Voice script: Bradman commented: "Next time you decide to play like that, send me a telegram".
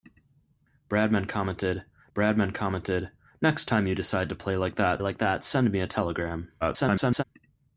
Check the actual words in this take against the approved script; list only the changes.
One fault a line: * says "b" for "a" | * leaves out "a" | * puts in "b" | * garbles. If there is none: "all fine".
* puts in "bradman commented"
* puts in "like that"
* garbles